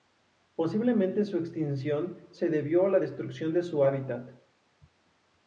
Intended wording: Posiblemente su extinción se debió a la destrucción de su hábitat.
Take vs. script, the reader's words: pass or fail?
pass